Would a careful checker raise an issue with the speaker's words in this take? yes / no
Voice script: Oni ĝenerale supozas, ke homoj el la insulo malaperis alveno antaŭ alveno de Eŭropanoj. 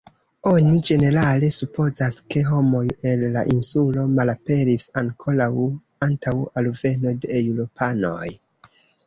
yes